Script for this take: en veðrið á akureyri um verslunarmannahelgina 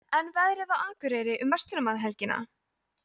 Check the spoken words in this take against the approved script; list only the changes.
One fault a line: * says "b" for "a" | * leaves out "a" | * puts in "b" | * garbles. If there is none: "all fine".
all fine